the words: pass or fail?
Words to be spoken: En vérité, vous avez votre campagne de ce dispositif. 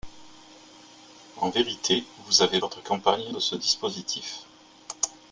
pass